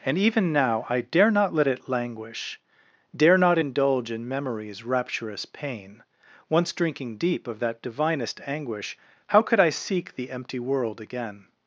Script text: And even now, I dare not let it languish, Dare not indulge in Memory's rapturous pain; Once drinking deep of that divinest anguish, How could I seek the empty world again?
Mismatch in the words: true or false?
false